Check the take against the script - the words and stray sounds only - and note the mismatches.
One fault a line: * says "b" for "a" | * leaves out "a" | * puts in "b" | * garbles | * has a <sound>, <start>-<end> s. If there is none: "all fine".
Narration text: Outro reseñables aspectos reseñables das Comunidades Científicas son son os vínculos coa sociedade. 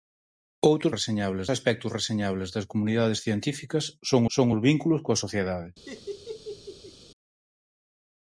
* has a laugh, 5.9-7.0 s